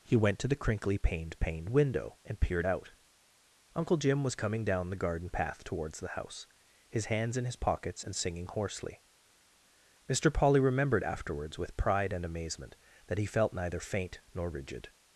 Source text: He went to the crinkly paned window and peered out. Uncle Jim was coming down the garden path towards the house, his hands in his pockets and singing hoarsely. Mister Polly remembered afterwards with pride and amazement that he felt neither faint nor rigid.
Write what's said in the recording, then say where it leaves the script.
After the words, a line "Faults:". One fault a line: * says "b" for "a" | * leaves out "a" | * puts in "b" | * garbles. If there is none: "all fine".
He went to the crinkly paned paned window and peered out. Uncle Jim was coming down the garden path towards the house, his hands in his pockets and singing hoarsely. Mister Polly remembered afterwards with pride and amazement that he felt neither faint nor rigid.
Faults:
* puts in "paned"